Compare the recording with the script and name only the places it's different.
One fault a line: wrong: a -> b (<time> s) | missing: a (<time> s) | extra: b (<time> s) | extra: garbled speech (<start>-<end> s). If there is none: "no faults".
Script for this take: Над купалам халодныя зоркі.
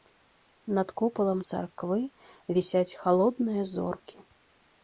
extra: царквы вісяць (1.5 s)